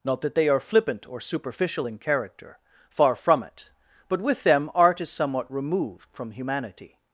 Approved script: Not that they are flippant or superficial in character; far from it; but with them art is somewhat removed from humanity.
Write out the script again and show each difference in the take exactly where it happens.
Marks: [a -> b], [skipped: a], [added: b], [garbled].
Not that they are flippant or superficial in character; far from it; but with them art is somewhat removed from humanity.